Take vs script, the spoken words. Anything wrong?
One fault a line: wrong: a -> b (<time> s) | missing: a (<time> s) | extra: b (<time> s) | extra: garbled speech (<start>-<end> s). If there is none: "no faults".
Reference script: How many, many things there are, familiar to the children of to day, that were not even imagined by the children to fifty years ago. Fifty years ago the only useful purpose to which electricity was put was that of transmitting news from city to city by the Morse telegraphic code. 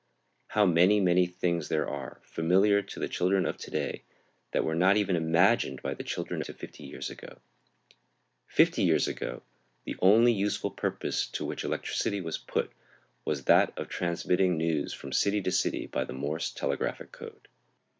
no faults